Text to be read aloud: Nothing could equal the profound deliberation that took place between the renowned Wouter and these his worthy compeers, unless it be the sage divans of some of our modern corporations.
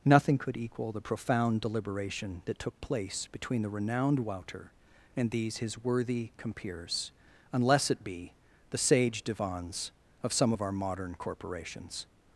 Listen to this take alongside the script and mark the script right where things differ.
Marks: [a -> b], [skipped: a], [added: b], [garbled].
Nothing could equal the profound deliberation that took place between the renowned Wouter and these his worthy compeers, unless it be the sage divans of some of our modern corporations.